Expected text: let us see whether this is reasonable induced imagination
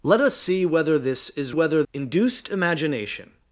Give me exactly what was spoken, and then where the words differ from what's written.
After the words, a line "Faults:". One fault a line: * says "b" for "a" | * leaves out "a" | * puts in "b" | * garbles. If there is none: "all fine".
let us see whether this is whether induced imagination
Faults:
* says "whether" for "reasonable"